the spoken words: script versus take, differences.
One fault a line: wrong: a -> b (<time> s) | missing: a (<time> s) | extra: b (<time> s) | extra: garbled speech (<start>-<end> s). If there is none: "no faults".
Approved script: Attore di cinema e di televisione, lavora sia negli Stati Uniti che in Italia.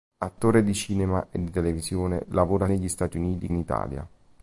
missing: sia (2.7 s)
missing: che (3.5 s)